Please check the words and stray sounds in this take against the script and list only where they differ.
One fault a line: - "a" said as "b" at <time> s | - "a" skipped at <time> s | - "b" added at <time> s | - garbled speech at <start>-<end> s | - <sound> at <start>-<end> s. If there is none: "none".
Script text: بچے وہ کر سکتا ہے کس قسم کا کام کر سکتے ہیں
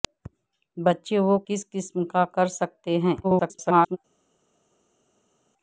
- "کر سکتا ہے" skipped at 1.4 s
- "کام" skipped at 2.2 s
- garbled speech at 3.2-4.0 s